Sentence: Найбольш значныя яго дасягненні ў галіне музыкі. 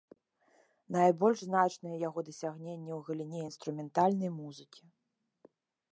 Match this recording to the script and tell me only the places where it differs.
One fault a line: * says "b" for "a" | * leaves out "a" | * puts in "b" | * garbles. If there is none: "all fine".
* puts in "інструментальнай"